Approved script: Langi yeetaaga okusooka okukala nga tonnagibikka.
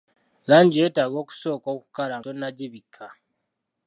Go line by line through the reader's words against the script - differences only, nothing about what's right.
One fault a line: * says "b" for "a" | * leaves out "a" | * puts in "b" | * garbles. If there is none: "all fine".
* leaves out "nga"